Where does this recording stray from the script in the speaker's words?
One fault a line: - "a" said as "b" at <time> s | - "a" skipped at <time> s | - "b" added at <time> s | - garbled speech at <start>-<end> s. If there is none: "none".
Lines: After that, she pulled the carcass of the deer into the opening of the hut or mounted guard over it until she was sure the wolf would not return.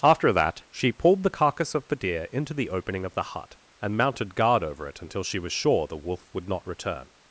- "or" said as "and" at 3.8 s